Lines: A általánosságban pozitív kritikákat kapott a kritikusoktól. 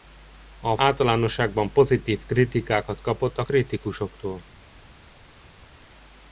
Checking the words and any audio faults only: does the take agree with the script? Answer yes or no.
yes